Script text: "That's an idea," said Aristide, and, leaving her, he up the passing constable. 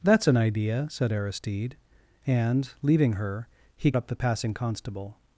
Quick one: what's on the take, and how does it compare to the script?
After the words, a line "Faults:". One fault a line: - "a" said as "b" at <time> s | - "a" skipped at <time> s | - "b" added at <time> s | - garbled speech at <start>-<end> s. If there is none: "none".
"That's an idea," said Aristide, and, leaving her, he up the passing constable.
Faults:
none